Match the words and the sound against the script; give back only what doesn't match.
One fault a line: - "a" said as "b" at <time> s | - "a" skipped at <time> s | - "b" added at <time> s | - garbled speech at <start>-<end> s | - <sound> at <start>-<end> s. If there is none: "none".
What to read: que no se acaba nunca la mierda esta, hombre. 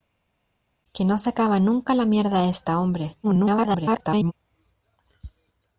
- garbled speech at 3.2-4.3 s